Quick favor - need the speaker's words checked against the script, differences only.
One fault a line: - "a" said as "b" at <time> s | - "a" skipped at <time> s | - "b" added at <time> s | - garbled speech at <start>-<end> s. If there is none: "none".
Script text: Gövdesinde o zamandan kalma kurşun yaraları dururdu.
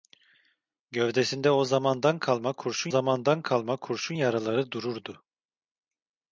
- "zamandan kalma kurşun" added at 2.9 s